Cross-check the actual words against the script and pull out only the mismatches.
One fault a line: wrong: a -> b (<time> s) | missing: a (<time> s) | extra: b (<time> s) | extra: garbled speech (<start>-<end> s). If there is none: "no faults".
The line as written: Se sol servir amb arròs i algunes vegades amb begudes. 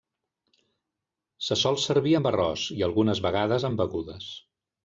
no faults